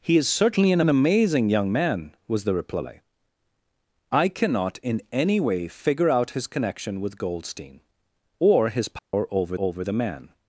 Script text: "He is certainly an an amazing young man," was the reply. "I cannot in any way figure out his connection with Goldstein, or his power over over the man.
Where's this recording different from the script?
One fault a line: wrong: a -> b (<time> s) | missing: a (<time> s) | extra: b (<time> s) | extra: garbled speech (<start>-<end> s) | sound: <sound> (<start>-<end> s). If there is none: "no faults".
sound: dropout (9.0-9.1 s)